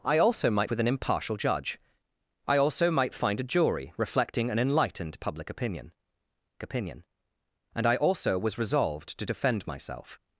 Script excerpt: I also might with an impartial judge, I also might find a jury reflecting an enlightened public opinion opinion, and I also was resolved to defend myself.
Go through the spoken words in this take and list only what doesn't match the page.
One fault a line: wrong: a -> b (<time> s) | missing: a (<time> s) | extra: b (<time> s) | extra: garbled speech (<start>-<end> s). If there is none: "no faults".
no faults